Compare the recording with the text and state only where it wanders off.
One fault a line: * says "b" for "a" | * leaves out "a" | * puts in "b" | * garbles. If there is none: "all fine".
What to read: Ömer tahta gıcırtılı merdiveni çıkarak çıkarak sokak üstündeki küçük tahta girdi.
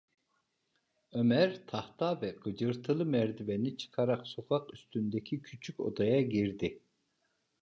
* puts in "ve"
* leaves out "çıkarak"
* says "odaya" for "tahta"